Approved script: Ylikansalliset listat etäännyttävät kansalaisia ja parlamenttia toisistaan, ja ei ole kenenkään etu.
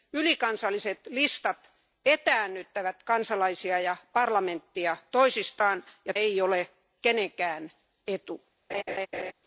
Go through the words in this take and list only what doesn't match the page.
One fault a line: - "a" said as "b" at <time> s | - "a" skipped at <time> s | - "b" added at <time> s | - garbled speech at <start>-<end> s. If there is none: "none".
none